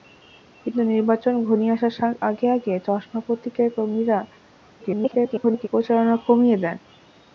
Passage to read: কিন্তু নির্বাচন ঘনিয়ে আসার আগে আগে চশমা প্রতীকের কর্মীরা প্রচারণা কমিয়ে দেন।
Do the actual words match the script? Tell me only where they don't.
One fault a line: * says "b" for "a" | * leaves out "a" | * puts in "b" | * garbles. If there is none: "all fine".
* garbles